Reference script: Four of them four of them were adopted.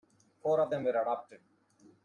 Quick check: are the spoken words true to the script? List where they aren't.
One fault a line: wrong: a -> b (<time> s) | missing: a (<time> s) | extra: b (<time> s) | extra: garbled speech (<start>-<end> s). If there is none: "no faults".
missing: four of them (0.8 s)